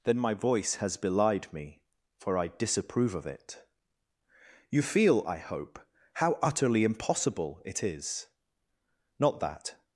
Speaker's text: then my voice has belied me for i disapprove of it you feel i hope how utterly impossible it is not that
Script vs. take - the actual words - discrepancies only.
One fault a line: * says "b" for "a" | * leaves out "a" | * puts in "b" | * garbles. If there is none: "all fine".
all fine